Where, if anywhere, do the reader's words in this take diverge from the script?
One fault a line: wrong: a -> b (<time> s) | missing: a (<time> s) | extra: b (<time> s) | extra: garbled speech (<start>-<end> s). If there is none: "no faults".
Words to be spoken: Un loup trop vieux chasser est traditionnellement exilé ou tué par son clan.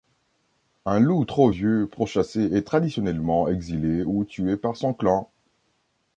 extra: pour (1.9 s)